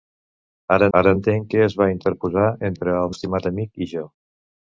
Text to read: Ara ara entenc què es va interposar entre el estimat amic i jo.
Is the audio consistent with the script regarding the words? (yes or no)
yes